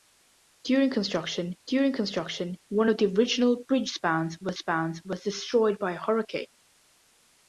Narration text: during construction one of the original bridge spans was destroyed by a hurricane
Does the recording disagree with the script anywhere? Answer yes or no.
yes